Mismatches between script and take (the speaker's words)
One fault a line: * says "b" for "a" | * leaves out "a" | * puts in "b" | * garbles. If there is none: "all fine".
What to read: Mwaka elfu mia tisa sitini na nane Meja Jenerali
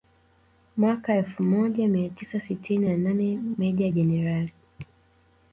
* puts in "moja"